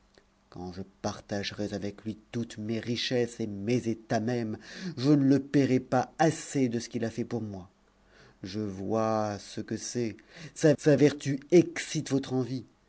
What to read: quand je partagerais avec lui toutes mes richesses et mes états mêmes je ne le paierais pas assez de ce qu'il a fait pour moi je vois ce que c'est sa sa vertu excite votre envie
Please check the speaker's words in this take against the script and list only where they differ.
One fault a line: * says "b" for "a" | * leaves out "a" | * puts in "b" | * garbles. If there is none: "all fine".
all fine